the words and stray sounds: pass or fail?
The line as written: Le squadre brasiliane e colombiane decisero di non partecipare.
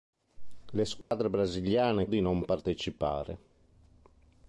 fail